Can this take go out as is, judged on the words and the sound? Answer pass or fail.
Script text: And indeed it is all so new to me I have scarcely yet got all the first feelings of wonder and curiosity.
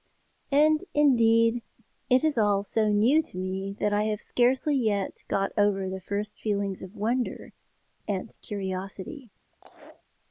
fail